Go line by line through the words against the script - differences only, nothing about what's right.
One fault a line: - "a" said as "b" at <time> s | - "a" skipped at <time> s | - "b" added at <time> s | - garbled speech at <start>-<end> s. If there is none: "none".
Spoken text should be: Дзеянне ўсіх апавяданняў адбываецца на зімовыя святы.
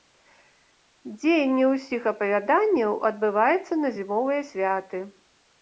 none